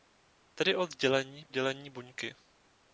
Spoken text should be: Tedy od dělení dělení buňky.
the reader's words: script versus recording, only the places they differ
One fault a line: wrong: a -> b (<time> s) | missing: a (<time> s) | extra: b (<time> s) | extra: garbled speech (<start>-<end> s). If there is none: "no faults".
no faults